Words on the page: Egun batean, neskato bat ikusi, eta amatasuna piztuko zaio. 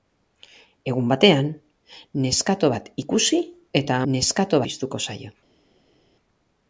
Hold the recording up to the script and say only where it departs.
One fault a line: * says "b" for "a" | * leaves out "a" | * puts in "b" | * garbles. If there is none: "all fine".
* says "neskato" for "amatasuna"